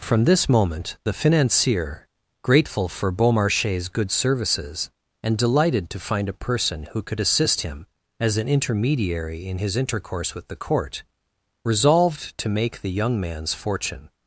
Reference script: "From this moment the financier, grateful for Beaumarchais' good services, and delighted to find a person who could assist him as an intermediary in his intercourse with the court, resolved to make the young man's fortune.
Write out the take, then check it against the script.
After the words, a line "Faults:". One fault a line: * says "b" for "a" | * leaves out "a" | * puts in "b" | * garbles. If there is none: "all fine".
"From this moment the financier, grateful for Beaumarchais' good services, and delighted to find a person who could assist him as an intermediary in his intercourse with the court, resolved to make the young man's fortune.
Faults:
all fine